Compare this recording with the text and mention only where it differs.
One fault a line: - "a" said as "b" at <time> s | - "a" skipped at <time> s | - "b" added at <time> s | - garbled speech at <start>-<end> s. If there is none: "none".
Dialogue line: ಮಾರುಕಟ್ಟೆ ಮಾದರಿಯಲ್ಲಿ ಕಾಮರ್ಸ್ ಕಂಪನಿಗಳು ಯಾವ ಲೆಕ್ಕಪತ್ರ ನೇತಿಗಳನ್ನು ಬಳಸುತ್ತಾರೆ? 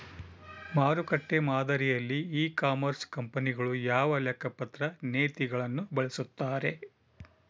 - "ಇ" added at 2.4 s